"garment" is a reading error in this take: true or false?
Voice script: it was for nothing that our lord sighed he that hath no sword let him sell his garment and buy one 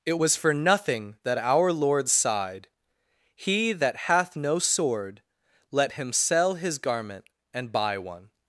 false